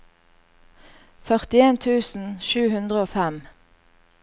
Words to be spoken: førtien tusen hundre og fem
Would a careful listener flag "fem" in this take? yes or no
no